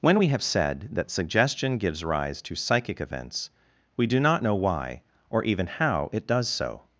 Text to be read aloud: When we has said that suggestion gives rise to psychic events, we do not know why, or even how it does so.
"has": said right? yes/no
no